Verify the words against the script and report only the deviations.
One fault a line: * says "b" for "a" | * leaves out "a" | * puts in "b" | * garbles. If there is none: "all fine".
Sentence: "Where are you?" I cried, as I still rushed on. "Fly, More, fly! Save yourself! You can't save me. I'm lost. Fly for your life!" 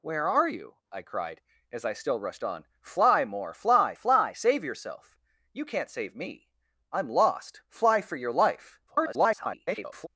* puts in "fly"
* garbles